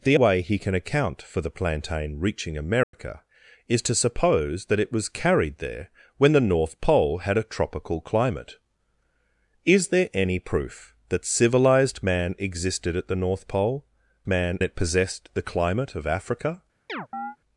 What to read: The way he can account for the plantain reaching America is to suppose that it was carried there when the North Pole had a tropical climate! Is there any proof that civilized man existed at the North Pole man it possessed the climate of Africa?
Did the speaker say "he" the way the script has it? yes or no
yes